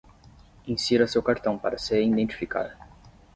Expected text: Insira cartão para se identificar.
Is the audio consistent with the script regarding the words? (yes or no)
no